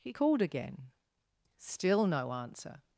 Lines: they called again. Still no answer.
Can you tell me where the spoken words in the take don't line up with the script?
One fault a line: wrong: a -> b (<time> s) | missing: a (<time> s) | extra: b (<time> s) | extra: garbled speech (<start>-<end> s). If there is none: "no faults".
wrong: they -> he (0.0 s)